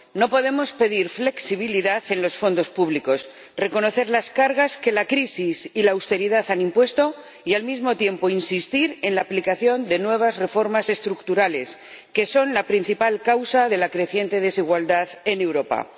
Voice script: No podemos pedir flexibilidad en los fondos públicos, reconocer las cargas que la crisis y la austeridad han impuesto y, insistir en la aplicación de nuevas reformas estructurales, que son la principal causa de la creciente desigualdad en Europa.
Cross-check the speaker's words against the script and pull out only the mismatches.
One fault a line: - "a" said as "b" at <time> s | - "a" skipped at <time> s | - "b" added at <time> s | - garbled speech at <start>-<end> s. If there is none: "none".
- "al mismo tiempo" added at 7.5 s